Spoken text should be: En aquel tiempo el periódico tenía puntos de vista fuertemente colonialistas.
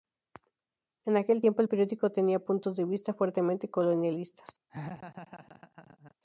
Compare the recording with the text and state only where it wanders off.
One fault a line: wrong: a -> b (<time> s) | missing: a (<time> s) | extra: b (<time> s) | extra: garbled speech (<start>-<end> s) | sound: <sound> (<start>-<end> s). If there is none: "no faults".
sound: laugh (4.7-6.1 s)